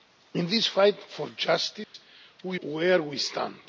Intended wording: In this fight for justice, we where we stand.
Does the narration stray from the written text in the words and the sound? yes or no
yes